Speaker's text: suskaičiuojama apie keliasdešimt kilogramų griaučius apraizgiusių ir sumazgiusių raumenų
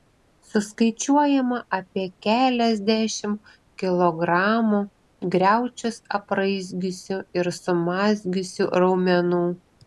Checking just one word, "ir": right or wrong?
right